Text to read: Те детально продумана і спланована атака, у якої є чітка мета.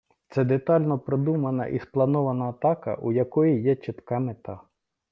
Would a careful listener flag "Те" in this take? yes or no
yes